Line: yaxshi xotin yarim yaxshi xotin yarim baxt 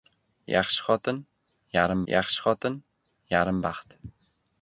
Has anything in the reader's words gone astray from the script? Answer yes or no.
no